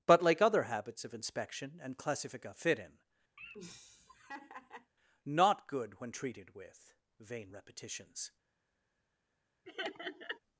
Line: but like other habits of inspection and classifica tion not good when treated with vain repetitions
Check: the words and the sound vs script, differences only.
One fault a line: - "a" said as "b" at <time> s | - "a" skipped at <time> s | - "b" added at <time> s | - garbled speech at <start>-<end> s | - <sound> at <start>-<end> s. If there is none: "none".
- "tion" said as "fit in" at 2.5 s
- laugh at 3.4-4.9 s
- laugh at 9.6-10.4 s